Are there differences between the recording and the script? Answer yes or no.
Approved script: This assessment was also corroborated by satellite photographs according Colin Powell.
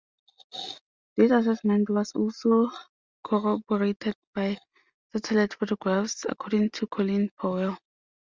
yes